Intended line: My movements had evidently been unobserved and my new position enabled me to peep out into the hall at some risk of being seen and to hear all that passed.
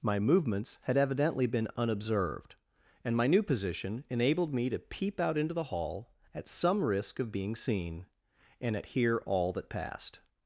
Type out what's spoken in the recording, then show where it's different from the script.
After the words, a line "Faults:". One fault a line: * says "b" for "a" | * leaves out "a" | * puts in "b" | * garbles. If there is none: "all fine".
My movements had evidently been unobserved and my new position enabled me to peep out into the hall at some risk of being seen and at hear all that passed.
Faults:
* says "at" for "to"